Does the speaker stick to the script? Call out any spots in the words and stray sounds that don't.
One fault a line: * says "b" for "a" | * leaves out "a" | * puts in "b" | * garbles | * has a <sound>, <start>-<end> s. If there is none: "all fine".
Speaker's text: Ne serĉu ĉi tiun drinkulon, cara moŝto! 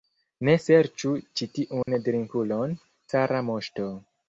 * has a dropout, 1.8-1.9 s